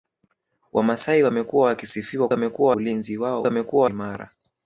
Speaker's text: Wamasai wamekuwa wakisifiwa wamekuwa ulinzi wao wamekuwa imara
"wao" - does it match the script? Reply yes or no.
yes